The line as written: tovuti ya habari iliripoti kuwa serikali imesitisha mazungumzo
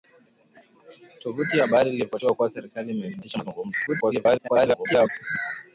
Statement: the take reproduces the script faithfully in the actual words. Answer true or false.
false